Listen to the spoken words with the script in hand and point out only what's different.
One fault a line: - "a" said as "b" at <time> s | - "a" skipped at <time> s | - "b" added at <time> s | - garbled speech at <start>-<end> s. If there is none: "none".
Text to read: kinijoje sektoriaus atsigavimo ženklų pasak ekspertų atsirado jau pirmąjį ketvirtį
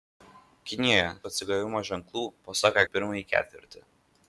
- "sektoriaus" skipped at 1.0 s
- "ekspertų atsirado" skipped at 2.8 s